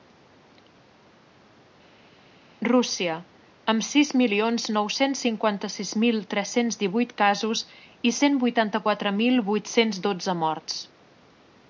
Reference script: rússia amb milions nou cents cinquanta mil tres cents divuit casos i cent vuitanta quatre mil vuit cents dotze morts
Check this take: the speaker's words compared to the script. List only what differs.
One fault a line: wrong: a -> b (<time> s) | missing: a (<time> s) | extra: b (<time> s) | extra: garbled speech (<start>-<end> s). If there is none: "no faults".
extra: sis (3.9 s)
extra: sis (5.8 s)